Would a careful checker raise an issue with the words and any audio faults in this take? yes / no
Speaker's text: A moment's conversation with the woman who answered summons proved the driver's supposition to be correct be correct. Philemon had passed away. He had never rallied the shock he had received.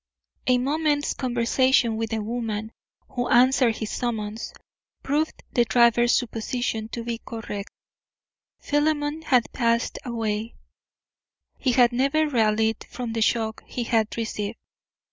yes